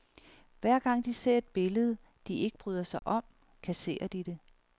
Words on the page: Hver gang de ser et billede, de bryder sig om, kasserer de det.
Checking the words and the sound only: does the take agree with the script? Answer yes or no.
no